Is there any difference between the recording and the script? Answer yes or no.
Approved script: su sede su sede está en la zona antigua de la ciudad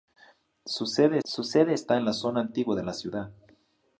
no